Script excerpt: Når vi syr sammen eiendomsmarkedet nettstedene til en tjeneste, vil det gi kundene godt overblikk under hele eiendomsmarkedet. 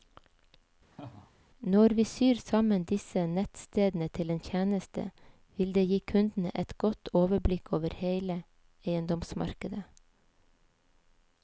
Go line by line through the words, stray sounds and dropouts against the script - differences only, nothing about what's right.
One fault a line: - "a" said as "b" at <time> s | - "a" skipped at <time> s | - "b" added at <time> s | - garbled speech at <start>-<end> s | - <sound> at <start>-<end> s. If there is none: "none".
- laugh at 0.9-1.3 s
- "eiendomsmarkedet" said as "disse" at 2.9 s
- "et" added at 6.6 s
- "under" said as "over" at 7.8 s